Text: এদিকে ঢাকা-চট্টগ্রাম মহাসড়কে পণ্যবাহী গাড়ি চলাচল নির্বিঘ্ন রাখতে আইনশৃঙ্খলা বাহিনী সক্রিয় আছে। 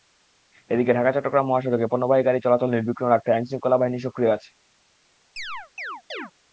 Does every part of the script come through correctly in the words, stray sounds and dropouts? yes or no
no